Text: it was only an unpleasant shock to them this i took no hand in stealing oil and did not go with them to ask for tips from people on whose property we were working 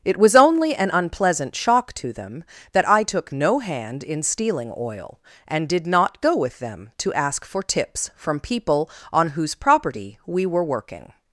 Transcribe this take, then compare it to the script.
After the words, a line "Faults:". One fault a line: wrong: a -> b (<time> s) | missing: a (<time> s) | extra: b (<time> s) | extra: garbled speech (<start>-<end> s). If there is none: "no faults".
it was only an unpleasant shock to them that i took no hand in stealing oil and did not go with them to ask for tips from people on whose property we were working
Faults:
wrong: this -> that (2.7 s)